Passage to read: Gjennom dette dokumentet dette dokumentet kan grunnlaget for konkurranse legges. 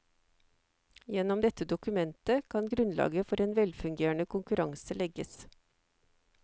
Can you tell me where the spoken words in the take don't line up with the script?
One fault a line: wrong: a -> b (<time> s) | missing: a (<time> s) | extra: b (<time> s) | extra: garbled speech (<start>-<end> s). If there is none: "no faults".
missing: dette dokumentet (2.5 s)
extra: en velfungerende (3.4 s)